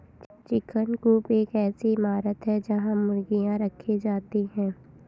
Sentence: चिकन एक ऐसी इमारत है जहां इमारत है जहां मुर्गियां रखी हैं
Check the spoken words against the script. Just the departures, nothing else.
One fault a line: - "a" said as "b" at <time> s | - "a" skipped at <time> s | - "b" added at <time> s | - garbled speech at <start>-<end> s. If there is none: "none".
- "कूप" added at 1.0 s
- "इमारत है जहां" skipped at 3.0 s
- "जाती" added at 4.0 s